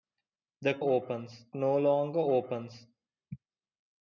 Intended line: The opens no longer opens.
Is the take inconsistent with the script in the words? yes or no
no